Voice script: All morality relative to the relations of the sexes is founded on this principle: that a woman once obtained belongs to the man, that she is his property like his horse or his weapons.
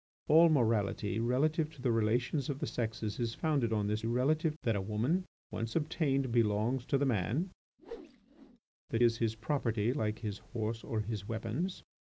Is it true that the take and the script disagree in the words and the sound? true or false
true